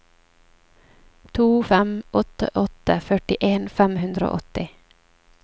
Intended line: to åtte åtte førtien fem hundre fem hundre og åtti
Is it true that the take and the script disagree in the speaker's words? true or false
true